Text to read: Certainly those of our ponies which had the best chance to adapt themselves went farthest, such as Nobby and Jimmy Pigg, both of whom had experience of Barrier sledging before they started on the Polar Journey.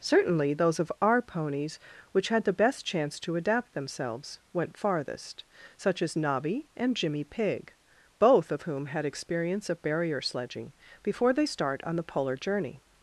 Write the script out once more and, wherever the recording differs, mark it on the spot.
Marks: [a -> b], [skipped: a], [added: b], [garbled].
Certainly those of our ponies which had the best chance to adapt themselves went farthest, such as Nobby and Jimmy Pigg, both of whom had experience of Barrier sledging before they [started -> start] on the Polar Journey.